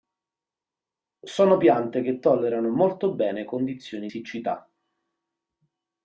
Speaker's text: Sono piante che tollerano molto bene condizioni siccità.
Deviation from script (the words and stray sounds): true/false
false